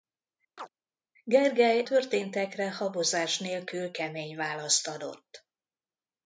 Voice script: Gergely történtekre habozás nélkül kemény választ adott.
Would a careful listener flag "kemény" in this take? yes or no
no